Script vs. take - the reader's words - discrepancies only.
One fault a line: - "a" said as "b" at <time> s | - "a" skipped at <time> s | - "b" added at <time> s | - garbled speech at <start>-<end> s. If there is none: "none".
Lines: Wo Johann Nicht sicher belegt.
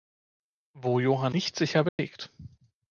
none